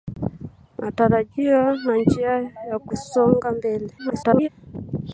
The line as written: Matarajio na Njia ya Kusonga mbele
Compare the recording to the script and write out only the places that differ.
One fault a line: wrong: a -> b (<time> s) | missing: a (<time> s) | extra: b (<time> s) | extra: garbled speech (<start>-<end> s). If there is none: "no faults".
extra: garbled speech (4.0-4.5 s)